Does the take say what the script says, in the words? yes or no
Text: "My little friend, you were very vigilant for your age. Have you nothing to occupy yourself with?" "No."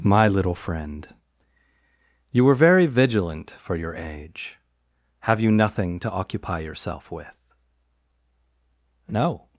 yes